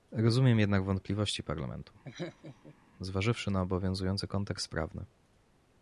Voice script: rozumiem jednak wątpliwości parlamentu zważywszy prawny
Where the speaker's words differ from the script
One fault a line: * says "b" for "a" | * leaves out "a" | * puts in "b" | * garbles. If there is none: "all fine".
* puts in "na obowiązujący kontekst"